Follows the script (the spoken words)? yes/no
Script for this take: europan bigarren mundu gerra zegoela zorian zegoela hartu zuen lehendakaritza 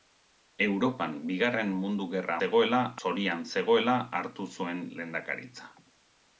yes